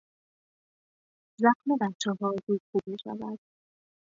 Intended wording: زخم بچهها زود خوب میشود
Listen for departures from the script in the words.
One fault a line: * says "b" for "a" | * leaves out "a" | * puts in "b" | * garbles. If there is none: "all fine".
all fine